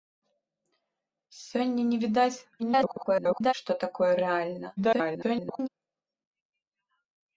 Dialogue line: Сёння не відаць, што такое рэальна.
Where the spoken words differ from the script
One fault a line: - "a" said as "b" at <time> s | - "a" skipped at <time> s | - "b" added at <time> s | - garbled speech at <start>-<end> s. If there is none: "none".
- garbled speech at 2.6-3.5 s
- garbled speech at 4.8-5.7 s